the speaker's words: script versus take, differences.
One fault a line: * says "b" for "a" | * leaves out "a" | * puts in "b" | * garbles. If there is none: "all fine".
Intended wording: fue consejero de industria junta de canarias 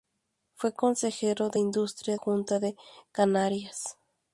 all fine